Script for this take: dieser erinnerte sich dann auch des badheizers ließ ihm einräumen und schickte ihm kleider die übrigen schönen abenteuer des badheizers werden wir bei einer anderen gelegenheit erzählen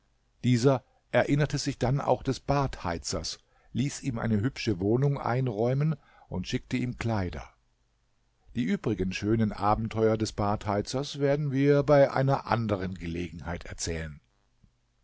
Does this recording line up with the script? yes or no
no